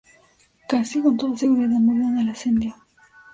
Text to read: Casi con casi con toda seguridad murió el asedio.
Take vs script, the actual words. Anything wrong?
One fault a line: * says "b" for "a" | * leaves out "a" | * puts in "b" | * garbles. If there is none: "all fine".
* leaves out "casi con"
* puts in "en"